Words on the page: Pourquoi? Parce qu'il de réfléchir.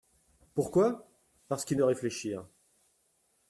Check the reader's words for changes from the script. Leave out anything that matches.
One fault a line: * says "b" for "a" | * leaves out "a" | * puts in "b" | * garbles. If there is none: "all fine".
all fine